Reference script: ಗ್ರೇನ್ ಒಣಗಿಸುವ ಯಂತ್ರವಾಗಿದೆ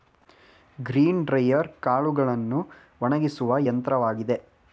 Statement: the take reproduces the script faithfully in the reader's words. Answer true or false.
false